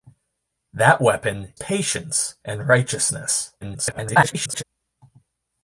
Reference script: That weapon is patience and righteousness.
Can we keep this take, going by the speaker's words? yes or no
no